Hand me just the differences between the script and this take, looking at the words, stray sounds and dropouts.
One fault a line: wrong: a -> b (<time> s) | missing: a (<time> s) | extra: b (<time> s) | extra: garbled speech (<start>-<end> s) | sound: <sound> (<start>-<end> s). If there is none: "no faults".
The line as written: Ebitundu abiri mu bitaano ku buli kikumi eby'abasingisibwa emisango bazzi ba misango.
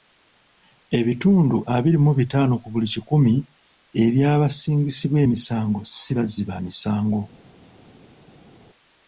extra: si (6.0 s)